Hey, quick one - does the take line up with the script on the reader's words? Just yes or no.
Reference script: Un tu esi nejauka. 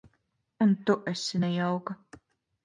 yes